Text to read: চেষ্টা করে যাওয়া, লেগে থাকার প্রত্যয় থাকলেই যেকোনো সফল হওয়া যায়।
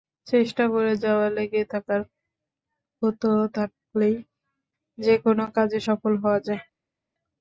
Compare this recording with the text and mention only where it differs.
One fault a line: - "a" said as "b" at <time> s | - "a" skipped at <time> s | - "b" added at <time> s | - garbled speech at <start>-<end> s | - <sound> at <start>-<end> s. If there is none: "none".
- "কাজে" added at 5.6 s